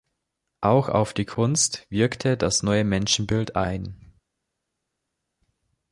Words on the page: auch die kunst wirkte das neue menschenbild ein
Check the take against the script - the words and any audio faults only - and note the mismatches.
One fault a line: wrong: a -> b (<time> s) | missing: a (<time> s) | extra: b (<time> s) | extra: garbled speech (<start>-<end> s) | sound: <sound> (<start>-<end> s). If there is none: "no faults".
extra: auf (0.9 s)